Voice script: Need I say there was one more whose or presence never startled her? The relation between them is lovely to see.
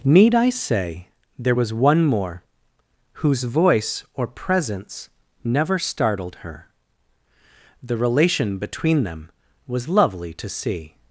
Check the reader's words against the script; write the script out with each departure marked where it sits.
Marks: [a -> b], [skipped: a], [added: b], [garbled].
Need I say there was one more whose [added: voice] or presence never startled her? The relation between them [is -> was] lovely to see.